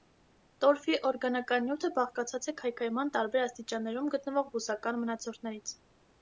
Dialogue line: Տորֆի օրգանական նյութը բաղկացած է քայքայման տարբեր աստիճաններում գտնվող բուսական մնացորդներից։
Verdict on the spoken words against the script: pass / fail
pass